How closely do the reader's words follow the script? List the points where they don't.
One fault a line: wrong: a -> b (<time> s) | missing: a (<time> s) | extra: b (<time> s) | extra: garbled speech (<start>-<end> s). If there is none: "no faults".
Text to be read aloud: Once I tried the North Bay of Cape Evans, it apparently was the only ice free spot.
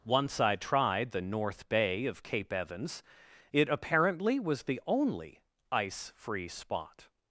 no faults